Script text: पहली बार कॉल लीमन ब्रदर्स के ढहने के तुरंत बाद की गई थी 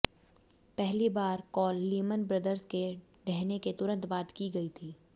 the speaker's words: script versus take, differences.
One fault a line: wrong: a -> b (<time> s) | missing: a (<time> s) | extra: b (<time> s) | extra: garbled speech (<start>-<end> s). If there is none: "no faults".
no faults